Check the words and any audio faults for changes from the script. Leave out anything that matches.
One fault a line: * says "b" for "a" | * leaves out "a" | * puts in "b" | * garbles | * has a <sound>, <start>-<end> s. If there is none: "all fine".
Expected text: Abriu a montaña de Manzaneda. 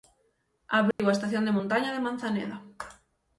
* has a dropout, 0.9-1.0 s
* puts in "estación de"